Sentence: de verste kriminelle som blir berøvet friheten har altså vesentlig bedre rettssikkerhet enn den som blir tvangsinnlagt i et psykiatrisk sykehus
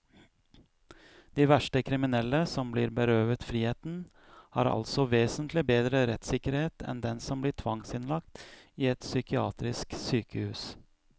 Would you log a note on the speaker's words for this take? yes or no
no